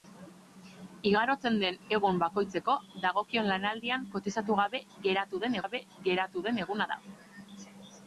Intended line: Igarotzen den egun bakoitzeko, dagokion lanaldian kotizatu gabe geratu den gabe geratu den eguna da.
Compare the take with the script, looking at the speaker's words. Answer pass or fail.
pass